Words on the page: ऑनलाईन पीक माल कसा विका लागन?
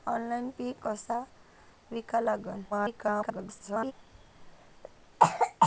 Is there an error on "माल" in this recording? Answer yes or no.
yes